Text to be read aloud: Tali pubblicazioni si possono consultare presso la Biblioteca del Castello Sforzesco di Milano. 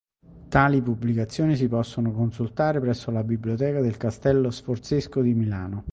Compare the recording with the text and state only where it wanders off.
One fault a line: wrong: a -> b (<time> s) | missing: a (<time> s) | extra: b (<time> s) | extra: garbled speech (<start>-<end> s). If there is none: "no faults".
no faults